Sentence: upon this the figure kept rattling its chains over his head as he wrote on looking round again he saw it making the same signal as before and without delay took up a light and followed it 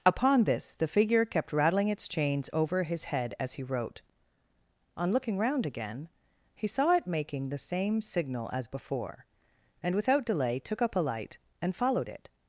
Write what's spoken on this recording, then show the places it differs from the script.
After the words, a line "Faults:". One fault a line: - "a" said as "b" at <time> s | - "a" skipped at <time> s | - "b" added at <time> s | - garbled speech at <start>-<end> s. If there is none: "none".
upon this the figure kept rattling its chains over his head as he wrote on looking round again he saw it making the same signal as before and without delay took up a light and followed it
Faults:
none